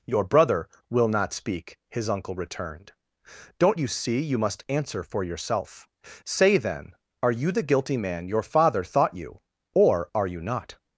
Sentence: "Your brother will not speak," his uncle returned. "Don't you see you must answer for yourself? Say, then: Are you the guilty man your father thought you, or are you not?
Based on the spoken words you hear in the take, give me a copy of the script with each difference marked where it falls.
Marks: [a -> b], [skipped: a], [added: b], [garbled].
"Your brother will not speak," his uncle returned. "Don't you see you must answer for yourself? Say, then: Are you the guilty man your father thought you, or are you not?